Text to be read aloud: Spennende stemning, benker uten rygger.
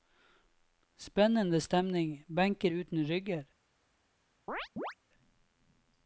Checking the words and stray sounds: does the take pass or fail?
fail